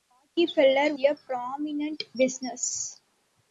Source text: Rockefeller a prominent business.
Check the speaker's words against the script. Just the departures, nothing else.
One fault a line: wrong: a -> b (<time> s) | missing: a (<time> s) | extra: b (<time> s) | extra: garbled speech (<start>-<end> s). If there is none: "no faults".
no faults